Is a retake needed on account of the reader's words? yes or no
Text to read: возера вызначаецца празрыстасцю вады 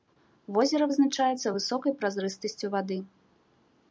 yes